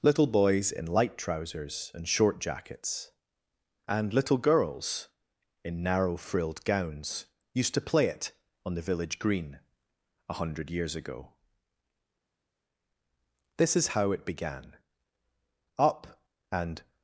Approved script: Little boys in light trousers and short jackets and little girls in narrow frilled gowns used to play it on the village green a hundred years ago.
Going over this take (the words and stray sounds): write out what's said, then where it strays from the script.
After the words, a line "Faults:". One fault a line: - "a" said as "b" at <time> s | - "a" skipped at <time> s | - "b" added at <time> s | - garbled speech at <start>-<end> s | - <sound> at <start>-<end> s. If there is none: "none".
Little boys in light trousers and short jackets and little girls in narrow frilled gowns used to play it on the village green a hundred years ago. This is how it began: Up and
Faults:
- "This is how it began Up and" added at 13.6 s